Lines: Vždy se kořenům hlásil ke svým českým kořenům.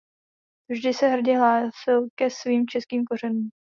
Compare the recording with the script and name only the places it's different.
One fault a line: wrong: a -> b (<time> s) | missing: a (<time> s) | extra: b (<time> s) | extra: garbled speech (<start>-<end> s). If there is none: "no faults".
wrong: kořenům -> hrdě (1.1 s)